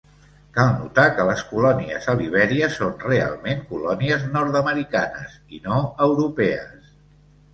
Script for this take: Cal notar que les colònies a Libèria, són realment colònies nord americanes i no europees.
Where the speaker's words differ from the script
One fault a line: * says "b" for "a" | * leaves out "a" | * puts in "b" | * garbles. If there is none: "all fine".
all fine